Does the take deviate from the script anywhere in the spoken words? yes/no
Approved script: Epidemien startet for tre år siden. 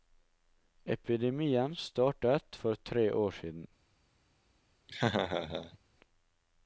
no